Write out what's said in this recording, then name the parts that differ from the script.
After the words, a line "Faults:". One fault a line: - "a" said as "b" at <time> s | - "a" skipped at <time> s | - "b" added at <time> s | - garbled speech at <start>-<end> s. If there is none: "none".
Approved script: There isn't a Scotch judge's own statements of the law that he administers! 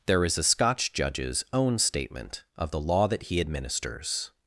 There is a Scotch judge's own statement of the law that he administers!
Faults:
- "isn't" said as "is" at 0.2 s
- "statements" said as "statement" at 1.8 s